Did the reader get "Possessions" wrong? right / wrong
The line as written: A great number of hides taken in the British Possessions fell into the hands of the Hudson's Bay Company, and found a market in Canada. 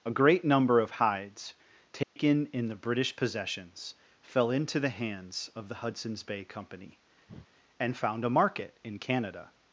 right